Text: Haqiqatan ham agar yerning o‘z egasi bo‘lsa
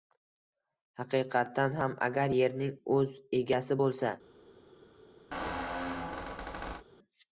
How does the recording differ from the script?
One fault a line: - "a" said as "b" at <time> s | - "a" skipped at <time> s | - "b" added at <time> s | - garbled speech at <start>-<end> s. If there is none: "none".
none